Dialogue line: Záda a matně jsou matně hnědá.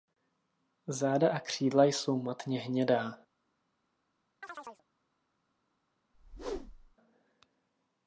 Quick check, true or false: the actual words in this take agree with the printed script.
false